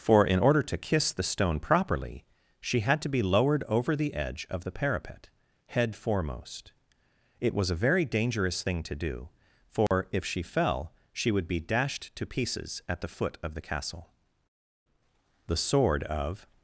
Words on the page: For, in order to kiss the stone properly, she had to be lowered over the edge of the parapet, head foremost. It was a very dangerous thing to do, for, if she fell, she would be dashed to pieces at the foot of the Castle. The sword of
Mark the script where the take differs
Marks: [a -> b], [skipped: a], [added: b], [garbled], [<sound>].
For, in order to kiss the stone properly, she had to be lowered over the edge of the parapet, head foremost. It was a very dangerous thing to do, for, [dropout] if she fell, she would be dashed to pieces at the foot of the Castle. The sword of